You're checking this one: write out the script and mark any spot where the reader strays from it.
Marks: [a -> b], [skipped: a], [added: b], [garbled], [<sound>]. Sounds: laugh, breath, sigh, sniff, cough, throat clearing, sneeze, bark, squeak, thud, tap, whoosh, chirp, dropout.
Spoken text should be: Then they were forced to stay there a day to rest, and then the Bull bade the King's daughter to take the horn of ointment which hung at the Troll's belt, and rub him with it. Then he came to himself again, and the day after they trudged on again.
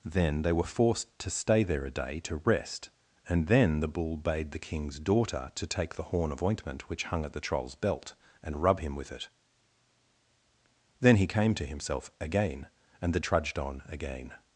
Then they were forced to stay there a day to rest, and then the Bull bade the King's daughter to take the horn of ointment which hung at the Troll's belt, and rub him with it. Then he came to himself again, and the [skipped: day after they] trudged on again.